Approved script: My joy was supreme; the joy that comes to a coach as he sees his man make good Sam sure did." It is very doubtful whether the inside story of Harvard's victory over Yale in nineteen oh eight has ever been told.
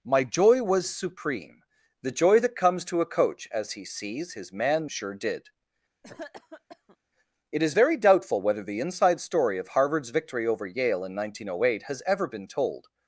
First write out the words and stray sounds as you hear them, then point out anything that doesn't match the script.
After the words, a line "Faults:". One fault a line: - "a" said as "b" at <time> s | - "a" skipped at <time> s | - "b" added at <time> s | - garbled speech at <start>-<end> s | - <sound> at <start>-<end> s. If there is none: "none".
My joy was supreme; the joy that comes to a coach as he sees his man sure did." It is very doubtful whether the inside story of Harvard's victory over Yale in nineteen oh eight has ever been told.
Faults:
- "make good Sam" skipped at 4.9 s
- cough at 6.0-7.0 s